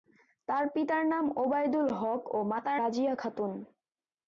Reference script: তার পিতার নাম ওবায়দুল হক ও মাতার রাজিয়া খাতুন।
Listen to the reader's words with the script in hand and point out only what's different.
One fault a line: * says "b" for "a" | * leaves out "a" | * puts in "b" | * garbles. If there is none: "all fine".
all fine